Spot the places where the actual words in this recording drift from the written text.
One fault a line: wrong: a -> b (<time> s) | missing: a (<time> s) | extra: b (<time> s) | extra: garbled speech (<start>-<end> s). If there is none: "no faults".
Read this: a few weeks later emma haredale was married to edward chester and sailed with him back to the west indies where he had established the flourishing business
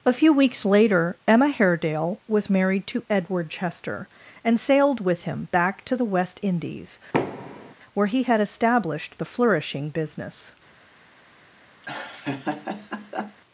no faults